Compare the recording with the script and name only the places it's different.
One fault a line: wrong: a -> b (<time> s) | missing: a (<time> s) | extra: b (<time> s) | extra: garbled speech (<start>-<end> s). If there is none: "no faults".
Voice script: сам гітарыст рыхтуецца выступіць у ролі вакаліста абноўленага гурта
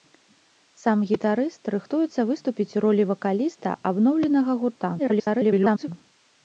extra: garbled speech (5.0-5.9 s)